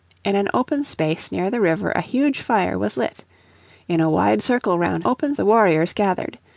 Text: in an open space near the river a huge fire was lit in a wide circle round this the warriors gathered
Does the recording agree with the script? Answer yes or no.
no